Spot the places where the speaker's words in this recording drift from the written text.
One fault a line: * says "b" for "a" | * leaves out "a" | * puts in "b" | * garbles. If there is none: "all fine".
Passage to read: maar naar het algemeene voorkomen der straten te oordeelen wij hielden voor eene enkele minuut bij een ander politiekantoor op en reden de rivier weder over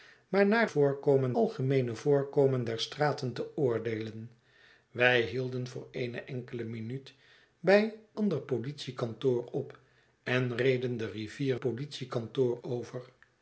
* says "voorkomen" for "het"
* leaves out "een"
* says "politiekantoor" for "weder"